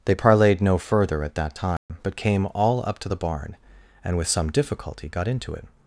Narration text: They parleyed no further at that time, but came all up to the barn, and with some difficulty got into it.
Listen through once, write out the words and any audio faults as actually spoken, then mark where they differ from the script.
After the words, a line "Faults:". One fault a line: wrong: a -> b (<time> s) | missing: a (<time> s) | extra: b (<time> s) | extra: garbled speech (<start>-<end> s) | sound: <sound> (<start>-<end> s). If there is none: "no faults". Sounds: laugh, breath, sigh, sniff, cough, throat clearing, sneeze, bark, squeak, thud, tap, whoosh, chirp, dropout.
They parleyed no further at that time, but came all up to the barn, and with some difficulty got into it.
Faults:
sound: dropout (1.8-1.9 s)